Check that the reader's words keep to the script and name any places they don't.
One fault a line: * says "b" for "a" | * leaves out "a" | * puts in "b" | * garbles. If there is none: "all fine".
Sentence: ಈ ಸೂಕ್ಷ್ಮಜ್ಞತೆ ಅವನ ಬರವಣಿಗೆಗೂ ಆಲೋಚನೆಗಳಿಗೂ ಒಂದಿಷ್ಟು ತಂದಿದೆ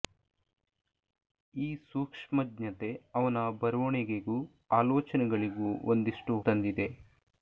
all fine